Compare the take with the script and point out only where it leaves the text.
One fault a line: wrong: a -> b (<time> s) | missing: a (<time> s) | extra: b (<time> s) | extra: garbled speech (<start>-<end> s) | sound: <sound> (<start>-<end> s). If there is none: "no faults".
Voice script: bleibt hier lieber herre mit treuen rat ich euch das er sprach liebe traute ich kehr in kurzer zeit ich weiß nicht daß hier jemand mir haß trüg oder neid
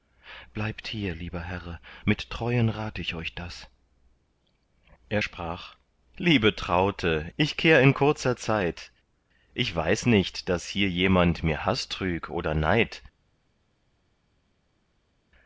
no faults